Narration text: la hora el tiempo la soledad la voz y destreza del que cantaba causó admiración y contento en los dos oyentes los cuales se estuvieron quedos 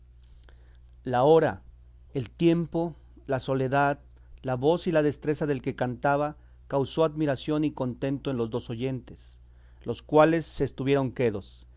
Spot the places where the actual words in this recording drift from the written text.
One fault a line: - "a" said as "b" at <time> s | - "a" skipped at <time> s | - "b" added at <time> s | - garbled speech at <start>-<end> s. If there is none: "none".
- "la" added at 4.9 s